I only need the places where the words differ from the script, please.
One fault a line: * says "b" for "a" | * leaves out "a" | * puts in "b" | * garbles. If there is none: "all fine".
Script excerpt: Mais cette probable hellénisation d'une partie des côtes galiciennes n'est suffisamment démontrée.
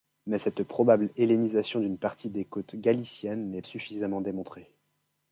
all fine